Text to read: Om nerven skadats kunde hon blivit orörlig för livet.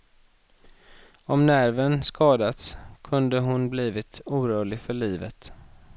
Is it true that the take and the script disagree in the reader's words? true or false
false